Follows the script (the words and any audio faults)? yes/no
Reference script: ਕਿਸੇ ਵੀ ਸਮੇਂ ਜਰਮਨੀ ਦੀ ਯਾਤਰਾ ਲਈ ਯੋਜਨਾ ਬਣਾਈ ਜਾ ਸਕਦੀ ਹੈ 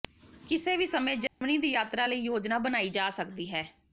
no